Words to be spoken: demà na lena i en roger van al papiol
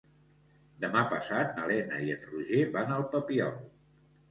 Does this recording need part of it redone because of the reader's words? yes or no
yes